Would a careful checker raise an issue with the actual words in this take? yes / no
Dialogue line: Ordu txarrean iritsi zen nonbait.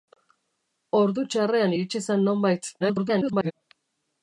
yes